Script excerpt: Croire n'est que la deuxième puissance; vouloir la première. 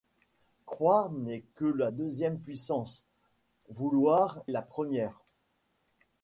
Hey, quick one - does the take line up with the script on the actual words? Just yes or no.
yes